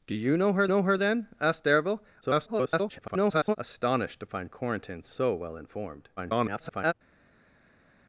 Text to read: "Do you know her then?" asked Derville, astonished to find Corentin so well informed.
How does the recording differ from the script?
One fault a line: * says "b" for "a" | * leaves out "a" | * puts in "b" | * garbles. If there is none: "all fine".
* puts in "know her"
* garbles
* garbles